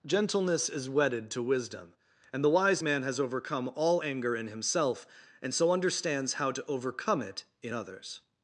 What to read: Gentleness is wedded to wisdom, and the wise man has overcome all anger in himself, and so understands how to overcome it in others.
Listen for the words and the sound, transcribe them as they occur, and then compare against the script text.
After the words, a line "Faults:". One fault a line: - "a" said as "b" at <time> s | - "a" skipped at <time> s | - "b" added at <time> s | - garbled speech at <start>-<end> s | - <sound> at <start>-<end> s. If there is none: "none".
Gentleness is wedded to wisdom, and the wise man has overcome all anger in himself, and so understands how to overcome it in others.
Faults:
none